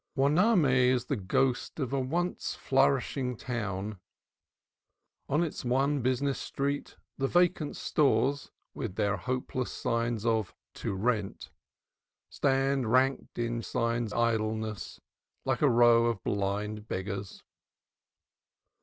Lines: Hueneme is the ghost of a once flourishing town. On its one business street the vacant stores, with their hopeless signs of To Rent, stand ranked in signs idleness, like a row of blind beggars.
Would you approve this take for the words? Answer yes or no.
yes